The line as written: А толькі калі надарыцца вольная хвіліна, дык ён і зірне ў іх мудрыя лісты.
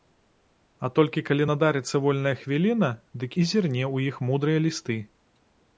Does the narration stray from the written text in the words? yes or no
yes